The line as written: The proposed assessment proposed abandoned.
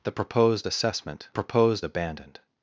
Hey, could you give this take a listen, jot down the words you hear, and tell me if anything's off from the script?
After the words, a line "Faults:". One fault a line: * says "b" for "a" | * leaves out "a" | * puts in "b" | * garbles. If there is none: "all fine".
The proposed assessment proposed abandoned.
Faults:
all fine